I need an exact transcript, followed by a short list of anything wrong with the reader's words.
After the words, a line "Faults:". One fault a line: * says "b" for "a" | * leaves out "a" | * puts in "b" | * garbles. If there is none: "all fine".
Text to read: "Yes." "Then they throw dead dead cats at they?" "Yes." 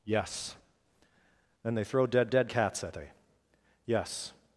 "Yes." "Then they throw dead dead cats at they?" "Yes."
Faults:
all fine